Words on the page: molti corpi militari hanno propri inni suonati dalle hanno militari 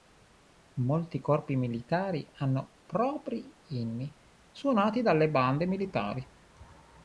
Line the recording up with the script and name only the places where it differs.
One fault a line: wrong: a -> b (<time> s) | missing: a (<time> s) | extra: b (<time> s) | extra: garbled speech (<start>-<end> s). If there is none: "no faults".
wrong: hanno -> bande (5.3 s)